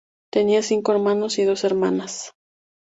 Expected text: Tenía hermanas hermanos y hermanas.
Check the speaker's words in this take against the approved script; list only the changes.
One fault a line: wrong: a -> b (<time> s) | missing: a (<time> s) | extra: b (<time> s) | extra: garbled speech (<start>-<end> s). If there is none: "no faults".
wrong: hermanas -> cinco (0.6 s)
extra: dos (1.4 s)